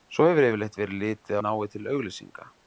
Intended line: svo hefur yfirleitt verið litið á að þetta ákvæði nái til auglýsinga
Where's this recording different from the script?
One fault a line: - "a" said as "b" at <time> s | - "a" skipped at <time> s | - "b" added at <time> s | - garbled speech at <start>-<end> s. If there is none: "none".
- "að þetta ákvæði" skipped at 1.4 s